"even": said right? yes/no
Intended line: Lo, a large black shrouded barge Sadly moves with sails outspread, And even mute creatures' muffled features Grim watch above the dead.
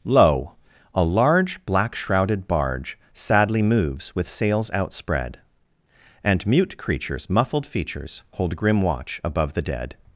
no